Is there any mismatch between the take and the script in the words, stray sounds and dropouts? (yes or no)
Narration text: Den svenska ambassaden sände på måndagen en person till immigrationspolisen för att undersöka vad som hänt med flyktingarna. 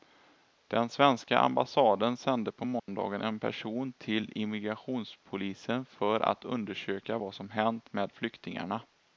yes